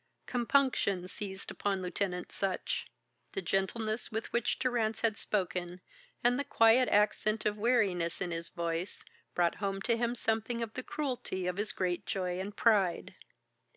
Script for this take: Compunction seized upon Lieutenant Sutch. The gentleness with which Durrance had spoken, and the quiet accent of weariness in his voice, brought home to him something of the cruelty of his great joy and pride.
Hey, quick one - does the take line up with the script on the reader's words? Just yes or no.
yes